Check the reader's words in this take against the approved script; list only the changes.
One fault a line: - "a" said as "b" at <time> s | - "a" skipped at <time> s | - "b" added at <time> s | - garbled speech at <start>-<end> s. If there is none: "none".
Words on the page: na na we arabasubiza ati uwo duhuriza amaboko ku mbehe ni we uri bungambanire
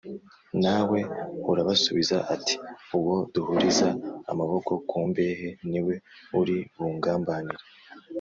- "na" skipped at 0.8 s